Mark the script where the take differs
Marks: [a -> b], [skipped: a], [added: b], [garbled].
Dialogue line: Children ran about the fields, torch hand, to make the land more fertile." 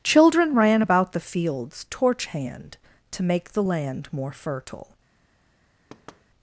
Children ran about the fields, torch hand, to make the land more fertile."